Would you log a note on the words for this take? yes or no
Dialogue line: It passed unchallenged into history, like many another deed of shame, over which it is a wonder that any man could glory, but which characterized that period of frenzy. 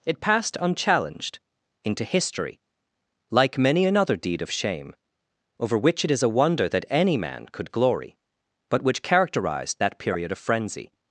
no